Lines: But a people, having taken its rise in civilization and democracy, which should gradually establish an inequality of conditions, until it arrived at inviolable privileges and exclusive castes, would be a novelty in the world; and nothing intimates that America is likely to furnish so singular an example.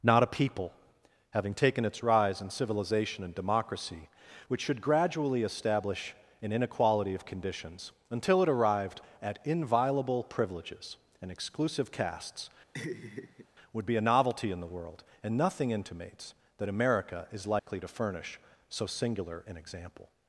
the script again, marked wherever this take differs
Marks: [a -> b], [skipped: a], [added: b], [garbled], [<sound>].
[But -> Not] a people, having taken its rise in civilization and democracy, which should gradually establish an inequality of conditions, until it arrived at inviolable privileges and exclusive castes, [laugh] would be a novelty in the world; and nothing intimates that America is likely [dropout] to furnish so singular an example.